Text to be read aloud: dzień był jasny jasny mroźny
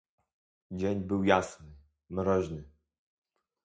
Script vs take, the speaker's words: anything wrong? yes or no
yes